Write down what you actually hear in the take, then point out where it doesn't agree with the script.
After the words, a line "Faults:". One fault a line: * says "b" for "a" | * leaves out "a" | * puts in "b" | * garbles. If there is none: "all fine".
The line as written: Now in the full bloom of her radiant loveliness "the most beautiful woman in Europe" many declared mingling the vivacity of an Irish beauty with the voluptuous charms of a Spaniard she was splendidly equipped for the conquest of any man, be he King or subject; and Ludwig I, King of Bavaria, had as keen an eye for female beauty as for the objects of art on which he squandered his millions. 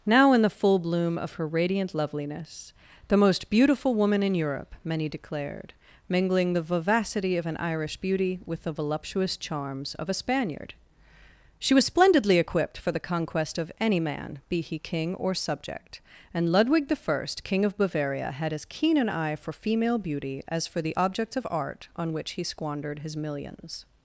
Now in the full bloom of her radiant loveliness "the most beautiful woman in Europe" many declared mingling the vivacity of an Irish beauty with the voluptuous charms of a Spaniard she was splendidly equipped for the conquest of any man, be he King or subject; and Ludwig I, King of Bavaria, had as keen an eye for female beauty as for the objects of art on which he squandered his millions.
Faults:
all fine